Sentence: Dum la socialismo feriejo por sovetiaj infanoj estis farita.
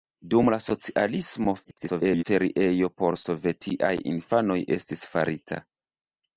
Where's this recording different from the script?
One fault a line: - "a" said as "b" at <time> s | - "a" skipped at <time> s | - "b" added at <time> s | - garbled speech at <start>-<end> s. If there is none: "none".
- garbled speech at 1.6-2.2 s